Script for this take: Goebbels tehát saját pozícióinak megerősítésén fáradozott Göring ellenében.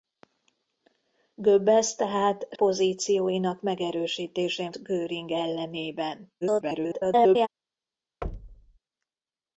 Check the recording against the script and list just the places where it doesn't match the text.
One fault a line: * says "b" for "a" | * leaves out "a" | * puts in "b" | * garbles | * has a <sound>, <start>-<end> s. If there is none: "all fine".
* leaves out "saját"
* leaves out "fáradozott"
* garbles
* has a thud, 8.2-8.8 s